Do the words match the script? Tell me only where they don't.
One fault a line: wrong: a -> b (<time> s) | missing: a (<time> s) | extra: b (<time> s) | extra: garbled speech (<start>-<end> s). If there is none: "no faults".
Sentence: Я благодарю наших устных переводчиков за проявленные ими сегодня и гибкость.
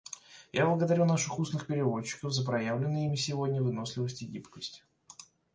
extra: выносливость (3.6 s)